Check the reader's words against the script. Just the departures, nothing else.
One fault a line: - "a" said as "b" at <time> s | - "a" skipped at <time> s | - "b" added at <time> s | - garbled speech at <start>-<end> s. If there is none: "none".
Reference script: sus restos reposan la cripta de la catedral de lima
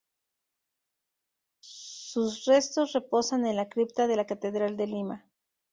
- "en" added at 3.4 s